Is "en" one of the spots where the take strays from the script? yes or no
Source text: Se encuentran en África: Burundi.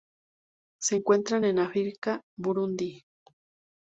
no